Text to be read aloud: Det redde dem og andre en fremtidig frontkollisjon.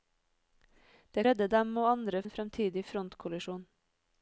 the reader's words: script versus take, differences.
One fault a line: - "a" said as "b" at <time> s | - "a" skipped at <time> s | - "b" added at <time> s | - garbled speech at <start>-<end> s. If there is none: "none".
none